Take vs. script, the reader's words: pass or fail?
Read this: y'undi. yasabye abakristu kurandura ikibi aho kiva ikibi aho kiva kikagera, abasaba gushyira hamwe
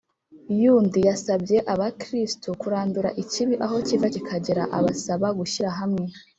fail